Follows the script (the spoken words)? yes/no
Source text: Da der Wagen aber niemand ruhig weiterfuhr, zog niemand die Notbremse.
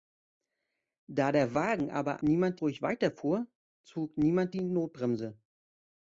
yes